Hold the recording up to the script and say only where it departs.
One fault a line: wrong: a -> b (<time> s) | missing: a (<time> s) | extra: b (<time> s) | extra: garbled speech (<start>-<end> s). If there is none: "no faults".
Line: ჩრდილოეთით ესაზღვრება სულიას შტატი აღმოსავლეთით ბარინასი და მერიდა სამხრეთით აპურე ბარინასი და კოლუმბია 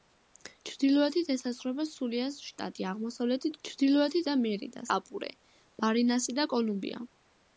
wrong: ბარინასი -> ჩრდილოეთით (3.7 s)
missing: სამხრეთით (4.8 s)